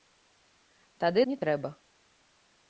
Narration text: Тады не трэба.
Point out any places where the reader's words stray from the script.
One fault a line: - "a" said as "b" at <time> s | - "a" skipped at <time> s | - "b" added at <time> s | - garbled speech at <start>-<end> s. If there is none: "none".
none